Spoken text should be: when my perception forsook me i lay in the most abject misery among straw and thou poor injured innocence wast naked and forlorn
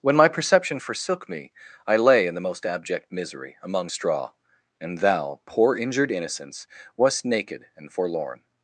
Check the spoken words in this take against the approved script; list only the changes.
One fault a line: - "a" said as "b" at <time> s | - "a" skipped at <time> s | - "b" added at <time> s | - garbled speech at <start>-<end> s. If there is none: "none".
none